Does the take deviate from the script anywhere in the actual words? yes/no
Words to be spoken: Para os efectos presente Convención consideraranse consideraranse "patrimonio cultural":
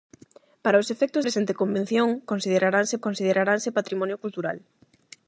no